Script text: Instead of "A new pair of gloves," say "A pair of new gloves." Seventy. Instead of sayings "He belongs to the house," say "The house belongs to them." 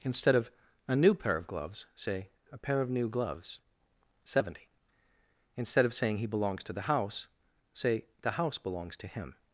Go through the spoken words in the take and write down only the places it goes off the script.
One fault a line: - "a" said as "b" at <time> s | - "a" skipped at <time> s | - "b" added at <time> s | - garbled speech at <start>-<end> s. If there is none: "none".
- "sayings" said as "saying" at 5.9 s
- "them" said as "him" at 9.1 s